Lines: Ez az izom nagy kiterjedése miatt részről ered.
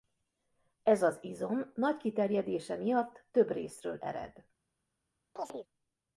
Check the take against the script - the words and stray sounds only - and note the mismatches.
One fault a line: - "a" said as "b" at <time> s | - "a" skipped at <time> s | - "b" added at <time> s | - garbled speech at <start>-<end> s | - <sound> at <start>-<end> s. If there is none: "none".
- "több" added at 3.3 s
- chirp at 5.4-5.7 s